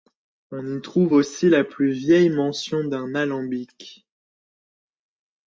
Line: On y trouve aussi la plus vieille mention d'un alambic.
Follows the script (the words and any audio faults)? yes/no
yes